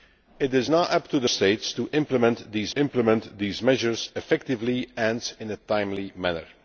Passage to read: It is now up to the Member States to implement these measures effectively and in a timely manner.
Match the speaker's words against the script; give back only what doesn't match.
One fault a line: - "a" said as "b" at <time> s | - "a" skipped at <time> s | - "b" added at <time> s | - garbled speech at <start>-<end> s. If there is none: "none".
- "Member" skipped at 1.3 s
- "implement these" added at 2.7 s